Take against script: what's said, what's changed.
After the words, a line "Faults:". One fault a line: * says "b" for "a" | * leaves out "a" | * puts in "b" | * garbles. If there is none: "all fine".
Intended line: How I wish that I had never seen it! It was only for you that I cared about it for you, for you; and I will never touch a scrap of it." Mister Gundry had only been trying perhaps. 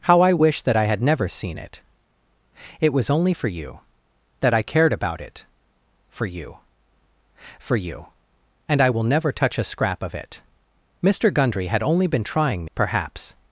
How I wish that I had never seen it! It was only for you that I cared about it for you, for you; and I will never touch a scrap of it." Mister Gundry had only been trying perhaps.
Faults:
all fine